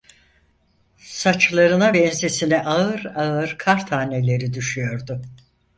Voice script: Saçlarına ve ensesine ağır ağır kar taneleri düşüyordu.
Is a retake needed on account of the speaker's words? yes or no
no